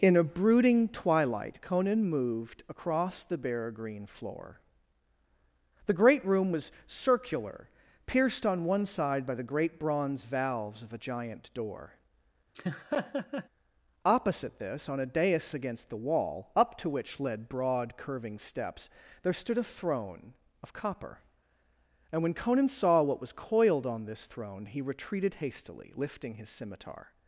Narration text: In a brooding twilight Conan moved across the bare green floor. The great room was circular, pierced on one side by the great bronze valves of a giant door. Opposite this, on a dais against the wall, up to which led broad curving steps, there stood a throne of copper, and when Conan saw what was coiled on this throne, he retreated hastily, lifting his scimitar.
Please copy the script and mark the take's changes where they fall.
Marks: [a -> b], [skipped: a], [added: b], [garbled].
In a brooding twilight Conan moved across the bare green floor. The great room was circular, pierced on one side by the great bronze valves of a giant door. Opposite this, on a dais against the wall, up to which led broad curving steps, there stood a throne of copper, and when Conan saw what was coiled on this throne, he retreated hastily, lifting his scimitar.